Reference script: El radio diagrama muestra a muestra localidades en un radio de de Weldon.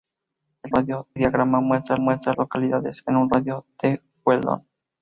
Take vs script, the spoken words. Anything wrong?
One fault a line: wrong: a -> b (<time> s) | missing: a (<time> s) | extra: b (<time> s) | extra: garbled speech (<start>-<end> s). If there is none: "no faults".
no faults